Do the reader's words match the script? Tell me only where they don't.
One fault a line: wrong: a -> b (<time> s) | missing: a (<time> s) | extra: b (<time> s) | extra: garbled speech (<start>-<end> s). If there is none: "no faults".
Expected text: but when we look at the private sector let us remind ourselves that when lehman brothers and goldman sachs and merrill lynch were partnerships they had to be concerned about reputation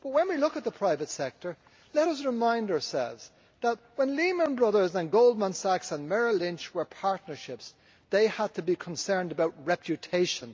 no faults